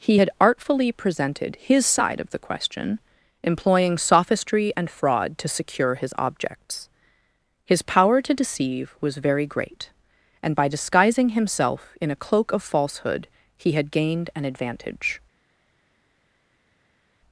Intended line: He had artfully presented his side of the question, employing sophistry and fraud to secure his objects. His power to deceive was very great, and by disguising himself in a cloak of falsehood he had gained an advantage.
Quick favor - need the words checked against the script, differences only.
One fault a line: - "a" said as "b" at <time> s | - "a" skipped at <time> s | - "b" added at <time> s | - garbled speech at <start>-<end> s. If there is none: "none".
none